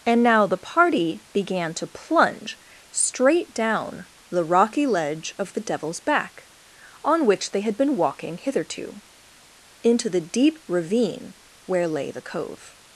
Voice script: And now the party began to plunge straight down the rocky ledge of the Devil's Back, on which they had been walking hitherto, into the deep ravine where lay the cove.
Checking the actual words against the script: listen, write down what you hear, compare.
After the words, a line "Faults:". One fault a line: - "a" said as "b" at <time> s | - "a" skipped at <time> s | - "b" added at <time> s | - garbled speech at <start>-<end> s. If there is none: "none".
And now the party began to plunge straight down the rocky ledge of the Devil's Back, on which they had been walking hitherto, into the deep ravine where lay the cove.
Faults:
none